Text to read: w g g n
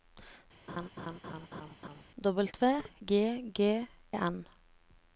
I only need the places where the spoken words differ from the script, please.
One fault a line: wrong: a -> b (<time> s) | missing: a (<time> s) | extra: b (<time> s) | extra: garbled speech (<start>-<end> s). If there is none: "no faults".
no faults